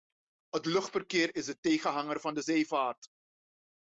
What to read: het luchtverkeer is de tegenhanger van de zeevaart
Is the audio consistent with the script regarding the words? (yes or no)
yes